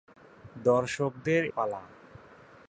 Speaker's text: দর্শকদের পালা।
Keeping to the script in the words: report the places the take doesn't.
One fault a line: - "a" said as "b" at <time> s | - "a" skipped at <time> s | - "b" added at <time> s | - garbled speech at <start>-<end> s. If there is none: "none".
none